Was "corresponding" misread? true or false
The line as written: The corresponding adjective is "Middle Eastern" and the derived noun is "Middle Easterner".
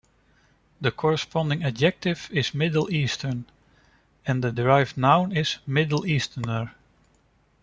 false